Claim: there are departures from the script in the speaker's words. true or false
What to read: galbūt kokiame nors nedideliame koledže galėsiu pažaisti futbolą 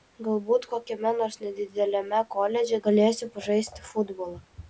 false